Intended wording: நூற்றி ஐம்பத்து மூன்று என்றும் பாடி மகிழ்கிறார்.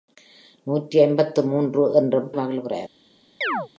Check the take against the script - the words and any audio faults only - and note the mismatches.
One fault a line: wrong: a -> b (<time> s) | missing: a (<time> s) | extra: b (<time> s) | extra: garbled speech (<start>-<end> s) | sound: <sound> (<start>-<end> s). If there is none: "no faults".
missing: பாடி (2.3 s)
sound: chirp (3.4-3.7 s)